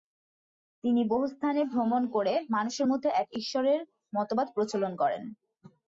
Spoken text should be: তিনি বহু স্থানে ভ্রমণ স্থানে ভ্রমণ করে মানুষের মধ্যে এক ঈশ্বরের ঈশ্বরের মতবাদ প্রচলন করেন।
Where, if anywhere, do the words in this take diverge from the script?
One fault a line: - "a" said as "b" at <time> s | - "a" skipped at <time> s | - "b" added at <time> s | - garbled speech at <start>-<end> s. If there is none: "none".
- "স্থানে ভ্রমণ" skipped at 2.0 s
- "ঈশ্বরের" skipped at 3.8 s